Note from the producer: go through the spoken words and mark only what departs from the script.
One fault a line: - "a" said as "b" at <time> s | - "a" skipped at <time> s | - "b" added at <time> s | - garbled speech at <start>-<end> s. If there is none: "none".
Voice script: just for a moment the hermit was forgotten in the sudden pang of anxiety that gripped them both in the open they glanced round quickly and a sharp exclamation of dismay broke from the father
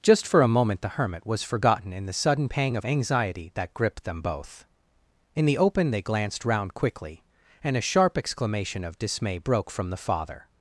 none